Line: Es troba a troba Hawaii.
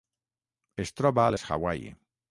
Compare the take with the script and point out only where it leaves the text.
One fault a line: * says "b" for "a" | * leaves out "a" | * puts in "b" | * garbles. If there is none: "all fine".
* says "les" for "troba"